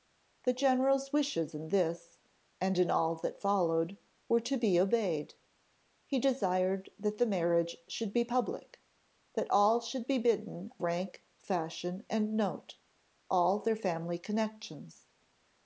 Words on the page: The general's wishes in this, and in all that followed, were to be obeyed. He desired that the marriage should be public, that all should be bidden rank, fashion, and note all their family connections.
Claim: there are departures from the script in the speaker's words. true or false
false